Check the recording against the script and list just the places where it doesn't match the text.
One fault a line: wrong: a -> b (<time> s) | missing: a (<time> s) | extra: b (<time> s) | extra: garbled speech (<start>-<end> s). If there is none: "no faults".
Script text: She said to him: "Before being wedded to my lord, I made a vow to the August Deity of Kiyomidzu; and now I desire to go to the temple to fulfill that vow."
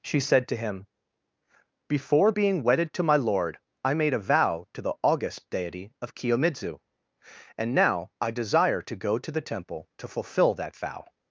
no faults